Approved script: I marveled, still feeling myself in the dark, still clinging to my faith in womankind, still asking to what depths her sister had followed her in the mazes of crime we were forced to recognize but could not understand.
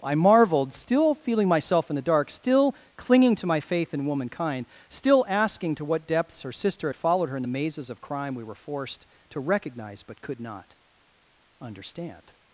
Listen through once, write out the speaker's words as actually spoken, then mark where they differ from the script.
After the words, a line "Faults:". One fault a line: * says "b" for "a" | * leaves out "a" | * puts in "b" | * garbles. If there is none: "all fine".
I marveled, still feeling myself in the dark, still clinging to my faith in womankind, still asking to what depths her sister had followed her in the mazes of crime we were forced to recognize but could not understand.
Faults:
all fine